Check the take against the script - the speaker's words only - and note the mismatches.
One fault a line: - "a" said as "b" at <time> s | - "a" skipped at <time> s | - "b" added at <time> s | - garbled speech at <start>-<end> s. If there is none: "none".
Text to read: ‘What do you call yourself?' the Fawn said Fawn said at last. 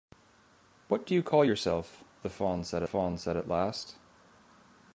none